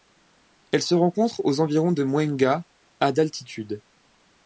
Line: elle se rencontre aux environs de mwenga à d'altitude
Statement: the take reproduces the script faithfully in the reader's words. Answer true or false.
true